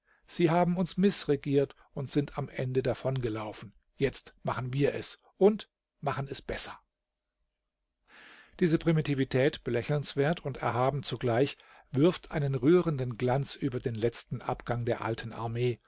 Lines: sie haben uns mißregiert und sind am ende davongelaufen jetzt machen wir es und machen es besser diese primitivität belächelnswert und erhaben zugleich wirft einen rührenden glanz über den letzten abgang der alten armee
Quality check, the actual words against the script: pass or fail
pass